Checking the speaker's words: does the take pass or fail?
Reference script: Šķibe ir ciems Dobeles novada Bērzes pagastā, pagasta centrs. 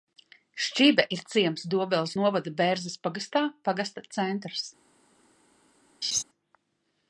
pass